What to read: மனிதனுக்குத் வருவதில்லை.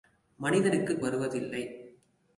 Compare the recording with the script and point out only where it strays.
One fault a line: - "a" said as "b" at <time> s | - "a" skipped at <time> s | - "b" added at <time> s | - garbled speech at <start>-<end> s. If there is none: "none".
none